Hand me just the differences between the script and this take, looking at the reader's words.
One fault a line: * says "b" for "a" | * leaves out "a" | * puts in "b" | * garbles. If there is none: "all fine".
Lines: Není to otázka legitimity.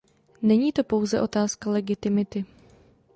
* puts in "pouze"